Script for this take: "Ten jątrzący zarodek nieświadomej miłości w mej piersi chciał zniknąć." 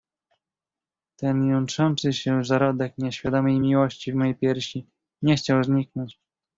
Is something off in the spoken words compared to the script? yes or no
yes